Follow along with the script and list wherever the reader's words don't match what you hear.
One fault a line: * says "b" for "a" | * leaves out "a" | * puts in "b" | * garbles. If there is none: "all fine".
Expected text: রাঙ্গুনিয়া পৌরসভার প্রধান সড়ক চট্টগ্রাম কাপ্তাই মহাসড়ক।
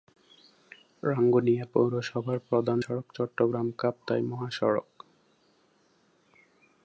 all fine